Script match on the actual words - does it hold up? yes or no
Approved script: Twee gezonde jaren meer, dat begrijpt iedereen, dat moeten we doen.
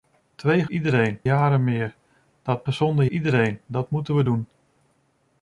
no